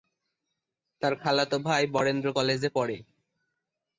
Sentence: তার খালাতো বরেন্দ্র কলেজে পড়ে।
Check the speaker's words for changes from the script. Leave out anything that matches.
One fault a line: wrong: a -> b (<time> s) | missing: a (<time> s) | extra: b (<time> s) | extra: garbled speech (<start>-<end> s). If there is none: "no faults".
extra: ভাই (1.7 s)